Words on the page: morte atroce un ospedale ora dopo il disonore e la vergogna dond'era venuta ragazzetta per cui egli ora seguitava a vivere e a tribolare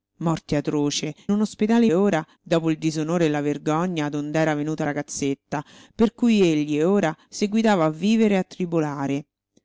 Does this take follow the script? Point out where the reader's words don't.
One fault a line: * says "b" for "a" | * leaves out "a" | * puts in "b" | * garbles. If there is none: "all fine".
all fine